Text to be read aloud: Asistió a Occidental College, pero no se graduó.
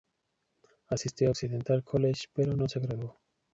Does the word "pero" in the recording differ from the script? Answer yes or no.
no